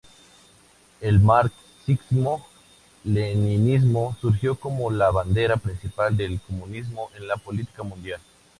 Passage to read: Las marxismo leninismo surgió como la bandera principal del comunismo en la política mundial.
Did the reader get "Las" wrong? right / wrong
wrong